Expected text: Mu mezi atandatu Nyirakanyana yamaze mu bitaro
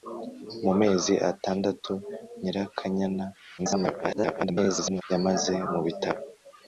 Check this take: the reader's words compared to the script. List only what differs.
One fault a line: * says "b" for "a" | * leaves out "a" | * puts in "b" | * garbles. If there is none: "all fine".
* garbles